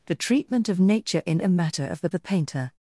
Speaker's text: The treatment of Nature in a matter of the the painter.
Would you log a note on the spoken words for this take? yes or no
no